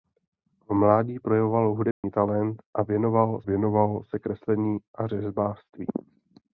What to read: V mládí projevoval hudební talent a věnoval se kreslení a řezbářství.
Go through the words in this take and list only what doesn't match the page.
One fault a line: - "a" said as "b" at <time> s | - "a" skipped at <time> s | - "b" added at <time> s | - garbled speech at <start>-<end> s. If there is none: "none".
- "věnoval" added at 3.4 s